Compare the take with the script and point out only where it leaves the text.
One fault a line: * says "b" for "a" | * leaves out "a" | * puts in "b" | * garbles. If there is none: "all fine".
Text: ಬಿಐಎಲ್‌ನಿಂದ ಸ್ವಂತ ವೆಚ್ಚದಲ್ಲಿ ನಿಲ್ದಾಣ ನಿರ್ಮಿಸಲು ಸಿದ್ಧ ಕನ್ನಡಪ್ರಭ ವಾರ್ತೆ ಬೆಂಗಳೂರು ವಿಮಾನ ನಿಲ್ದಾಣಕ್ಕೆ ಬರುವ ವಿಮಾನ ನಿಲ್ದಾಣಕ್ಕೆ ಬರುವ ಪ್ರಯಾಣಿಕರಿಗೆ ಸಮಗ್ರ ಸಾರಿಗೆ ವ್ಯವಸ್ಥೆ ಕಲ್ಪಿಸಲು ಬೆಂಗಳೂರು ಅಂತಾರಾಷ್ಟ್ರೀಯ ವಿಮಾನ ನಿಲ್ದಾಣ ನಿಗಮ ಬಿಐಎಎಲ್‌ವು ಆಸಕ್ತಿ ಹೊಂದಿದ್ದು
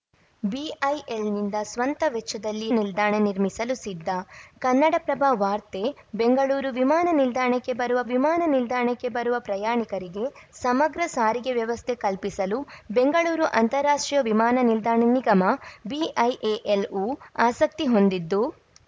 all fine